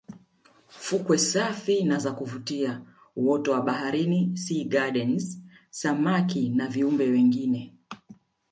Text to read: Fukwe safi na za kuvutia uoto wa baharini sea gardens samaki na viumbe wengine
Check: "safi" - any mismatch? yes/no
no